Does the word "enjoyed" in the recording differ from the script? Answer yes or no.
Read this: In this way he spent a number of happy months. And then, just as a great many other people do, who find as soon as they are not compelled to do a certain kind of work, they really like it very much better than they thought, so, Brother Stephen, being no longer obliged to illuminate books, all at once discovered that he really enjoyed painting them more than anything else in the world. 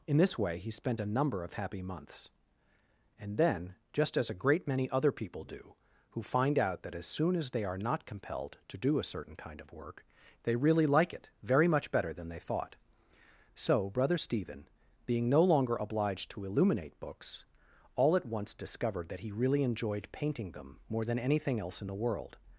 no